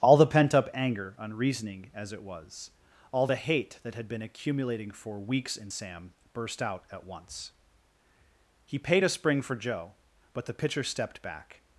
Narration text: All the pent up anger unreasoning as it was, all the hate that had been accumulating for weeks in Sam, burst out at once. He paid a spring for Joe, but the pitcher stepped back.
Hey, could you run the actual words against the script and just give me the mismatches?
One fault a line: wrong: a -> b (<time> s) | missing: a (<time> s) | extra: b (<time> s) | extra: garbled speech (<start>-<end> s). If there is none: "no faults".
no faults